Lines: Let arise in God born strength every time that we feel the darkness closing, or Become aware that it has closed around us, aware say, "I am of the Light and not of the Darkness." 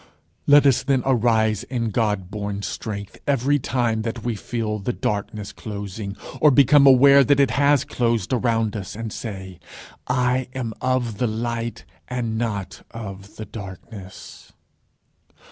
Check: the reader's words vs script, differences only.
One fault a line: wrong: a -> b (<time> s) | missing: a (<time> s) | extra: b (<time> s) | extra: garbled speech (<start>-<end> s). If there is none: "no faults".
extra: us then (0.7 s)
wrong: aware -> and (8.9 s)